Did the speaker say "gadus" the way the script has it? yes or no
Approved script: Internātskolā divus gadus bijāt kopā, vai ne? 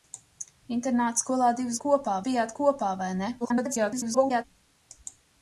no